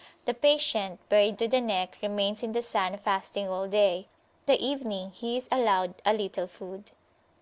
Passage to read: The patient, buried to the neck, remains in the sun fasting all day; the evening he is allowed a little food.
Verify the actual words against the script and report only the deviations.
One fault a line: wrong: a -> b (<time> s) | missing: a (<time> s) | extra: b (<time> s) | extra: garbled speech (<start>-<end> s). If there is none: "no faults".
no faults